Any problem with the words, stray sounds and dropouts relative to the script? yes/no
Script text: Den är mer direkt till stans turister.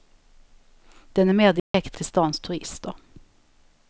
yes